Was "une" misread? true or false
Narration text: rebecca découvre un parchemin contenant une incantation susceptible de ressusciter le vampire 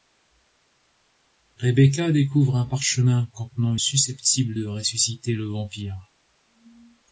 true